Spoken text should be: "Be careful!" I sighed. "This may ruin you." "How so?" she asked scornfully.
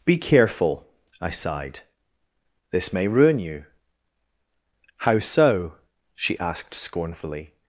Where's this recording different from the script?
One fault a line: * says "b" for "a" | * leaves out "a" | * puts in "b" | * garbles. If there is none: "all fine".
all fine